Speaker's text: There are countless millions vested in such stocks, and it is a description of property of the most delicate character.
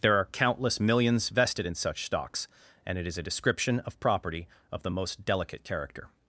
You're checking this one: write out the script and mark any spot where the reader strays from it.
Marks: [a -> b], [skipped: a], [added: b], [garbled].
There are countless millions vested in such stocks, and it is a description of property of the most delicate character.